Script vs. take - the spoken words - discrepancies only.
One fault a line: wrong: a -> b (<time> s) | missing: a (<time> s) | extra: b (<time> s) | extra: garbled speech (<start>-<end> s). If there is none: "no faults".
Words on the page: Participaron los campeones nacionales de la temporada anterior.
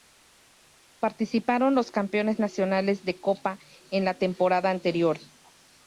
extra: copa en (3.2 s)